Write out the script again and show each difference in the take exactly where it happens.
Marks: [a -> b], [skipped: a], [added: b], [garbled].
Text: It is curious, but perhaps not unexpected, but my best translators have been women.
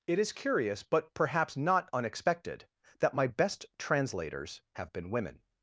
It is curious, but perhaps not unexpected, [but -> that] my best translators have been women.